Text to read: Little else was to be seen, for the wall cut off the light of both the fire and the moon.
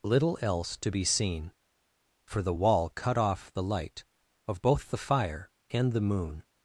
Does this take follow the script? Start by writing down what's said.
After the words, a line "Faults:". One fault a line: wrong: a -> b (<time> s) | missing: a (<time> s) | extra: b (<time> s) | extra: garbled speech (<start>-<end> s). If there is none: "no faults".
Little else to be seen, for the wall cut off the light of both the fire and the moon.
Faults:
missing: was (0.8 s)